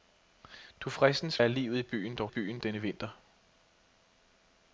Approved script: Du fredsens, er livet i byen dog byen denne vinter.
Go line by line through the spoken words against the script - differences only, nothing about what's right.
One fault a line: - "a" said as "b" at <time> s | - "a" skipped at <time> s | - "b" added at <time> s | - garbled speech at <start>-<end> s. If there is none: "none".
none